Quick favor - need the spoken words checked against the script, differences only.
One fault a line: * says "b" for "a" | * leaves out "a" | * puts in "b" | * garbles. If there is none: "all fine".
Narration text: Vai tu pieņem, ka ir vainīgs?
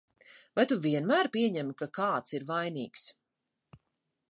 * puts in "vienmēr"
* puts in "kāds"